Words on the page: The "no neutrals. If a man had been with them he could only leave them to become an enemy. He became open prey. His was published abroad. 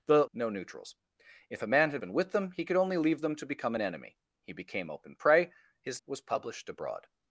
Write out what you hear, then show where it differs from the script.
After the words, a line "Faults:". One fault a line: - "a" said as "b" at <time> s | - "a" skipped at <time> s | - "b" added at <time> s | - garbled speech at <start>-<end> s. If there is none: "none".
The "no neutrals. If a man had been with them he could only leave them to become an enemy. He became open prey. His was published abroad.
Faults:
none